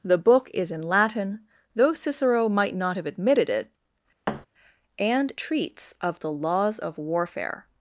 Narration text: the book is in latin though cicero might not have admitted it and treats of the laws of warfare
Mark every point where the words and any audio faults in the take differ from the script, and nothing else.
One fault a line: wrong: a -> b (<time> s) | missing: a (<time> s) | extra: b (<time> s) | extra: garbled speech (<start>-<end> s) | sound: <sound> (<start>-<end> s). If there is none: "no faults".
sound: thud (4.3-4.5 s)